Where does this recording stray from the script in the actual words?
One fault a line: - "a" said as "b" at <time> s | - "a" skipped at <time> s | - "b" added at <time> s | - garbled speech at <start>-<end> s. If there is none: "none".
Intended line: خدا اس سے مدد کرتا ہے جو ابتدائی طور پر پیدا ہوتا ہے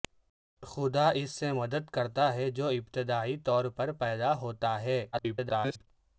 - garbled speech at 5.1-5.9 s